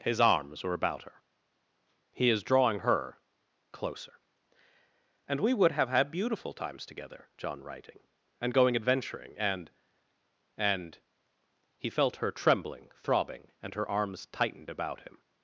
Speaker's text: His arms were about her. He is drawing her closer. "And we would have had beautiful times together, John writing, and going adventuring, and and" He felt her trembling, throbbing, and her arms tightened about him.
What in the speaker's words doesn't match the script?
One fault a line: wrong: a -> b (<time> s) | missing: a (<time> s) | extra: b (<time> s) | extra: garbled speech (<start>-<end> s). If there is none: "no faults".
no faults